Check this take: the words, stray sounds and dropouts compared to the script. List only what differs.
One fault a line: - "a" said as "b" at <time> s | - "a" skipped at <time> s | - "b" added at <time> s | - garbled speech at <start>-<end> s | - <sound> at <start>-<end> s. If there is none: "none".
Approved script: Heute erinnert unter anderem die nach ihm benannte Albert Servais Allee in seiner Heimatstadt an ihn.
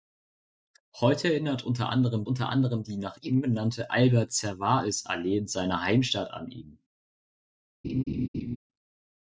- "unter anderem" added at 2.2 s
- laugh at 7.8-8.6 s